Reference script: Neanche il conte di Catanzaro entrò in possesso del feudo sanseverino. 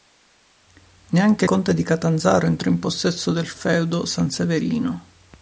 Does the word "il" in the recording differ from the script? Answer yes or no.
yes